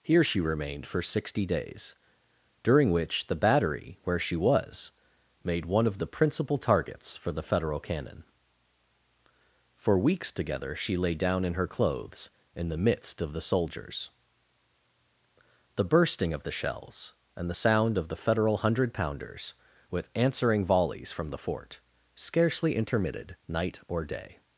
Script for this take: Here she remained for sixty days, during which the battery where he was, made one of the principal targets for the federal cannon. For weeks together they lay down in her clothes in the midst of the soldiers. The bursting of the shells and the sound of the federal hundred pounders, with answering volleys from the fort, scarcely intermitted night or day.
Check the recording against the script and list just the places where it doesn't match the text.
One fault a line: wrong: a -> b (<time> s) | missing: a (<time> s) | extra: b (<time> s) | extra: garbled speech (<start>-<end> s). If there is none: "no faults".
wrong: he -> she (4.2 s)
wrong: they -> she (10.8 s)